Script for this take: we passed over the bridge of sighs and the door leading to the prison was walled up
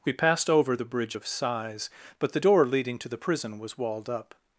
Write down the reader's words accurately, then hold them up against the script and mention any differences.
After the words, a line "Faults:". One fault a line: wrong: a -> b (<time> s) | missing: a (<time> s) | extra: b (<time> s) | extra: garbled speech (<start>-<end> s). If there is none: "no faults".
we passed over the bridge of sighs but the door leading to the prison was walled up
Faults:
wrong: and -> but (2.2 s)